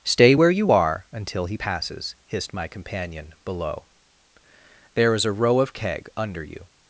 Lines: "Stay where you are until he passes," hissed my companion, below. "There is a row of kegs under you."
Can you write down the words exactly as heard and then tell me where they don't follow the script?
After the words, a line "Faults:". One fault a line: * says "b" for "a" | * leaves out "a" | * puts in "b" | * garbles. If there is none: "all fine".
"Stay where you are until he passes," hissed my companion, below. "There is a row of keg under you."
Faults:
* says "keg" for "kegs"